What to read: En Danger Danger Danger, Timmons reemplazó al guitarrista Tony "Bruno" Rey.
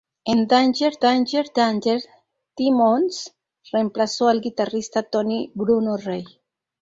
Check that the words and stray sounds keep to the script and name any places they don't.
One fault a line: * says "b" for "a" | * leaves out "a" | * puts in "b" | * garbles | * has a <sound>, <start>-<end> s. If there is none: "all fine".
all fine